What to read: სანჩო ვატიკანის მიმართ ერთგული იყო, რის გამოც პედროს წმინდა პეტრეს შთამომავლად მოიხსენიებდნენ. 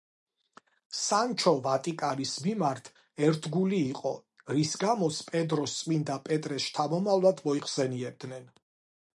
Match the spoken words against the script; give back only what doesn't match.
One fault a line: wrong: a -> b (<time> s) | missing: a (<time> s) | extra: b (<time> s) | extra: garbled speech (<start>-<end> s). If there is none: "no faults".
no faults